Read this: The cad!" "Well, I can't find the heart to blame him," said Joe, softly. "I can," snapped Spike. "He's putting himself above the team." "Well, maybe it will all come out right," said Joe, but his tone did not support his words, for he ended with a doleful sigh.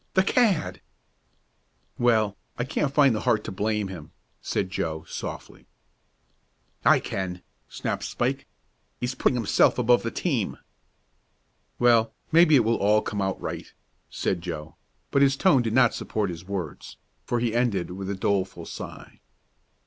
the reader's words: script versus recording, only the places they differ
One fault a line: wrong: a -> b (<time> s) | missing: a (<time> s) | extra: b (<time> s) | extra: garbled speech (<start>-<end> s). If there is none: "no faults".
no faults